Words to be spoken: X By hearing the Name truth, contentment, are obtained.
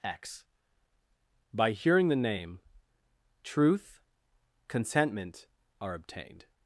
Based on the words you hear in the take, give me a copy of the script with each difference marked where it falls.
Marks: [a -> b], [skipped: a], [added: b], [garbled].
X By hearing the Name truth, contentment, are obtained.